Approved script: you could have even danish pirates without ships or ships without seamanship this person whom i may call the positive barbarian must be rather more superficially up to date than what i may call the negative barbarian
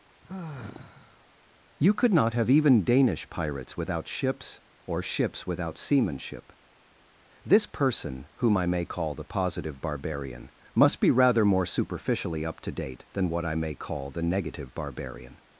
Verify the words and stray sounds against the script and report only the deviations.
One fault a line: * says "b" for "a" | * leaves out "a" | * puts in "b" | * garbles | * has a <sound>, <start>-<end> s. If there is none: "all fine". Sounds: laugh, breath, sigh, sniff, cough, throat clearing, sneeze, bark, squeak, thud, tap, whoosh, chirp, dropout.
* has a sigh, 0.2-1.3 s
* puts in "not"